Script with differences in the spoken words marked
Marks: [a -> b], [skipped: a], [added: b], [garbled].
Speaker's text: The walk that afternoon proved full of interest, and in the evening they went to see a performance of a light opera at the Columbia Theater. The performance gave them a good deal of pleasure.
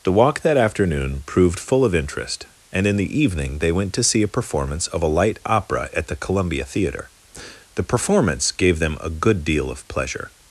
The walk that afternoon proved full of interest, and in the evening they went to see a performance of a light opera at the Columbia Theater. The performance gave them a good deal of pleasure.